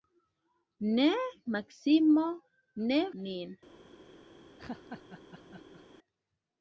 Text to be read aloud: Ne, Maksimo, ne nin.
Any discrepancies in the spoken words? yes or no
no